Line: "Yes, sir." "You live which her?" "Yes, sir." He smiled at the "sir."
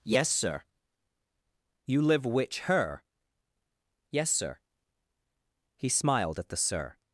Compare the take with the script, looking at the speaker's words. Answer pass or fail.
pass